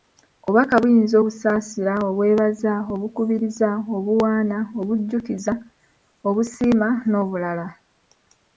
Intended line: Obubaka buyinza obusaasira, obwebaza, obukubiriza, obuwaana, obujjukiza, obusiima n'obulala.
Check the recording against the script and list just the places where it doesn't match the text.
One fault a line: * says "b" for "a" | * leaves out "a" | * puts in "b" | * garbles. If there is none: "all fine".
all fine